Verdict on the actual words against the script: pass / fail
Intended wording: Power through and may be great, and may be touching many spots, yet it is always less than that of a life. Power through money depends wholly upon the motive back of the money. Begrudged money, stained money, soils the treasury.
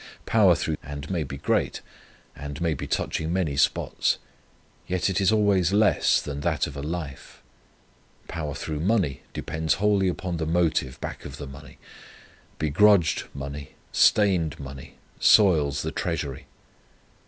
pass